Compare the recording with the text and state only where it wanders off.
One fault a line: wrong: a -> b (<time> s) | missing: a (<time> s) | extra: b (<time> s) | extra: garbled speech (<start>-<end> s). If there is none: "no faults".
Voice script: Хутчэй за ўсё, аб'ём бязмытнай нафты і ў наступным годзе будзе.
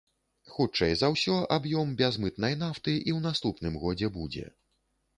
no faults